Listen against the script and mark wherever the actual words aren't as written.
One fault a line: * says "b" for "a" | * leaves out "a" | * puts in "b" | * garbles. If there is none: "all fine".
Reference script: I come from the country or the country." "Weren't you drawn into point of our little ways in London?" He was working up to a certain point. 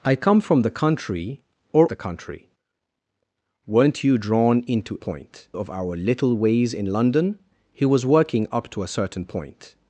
all fine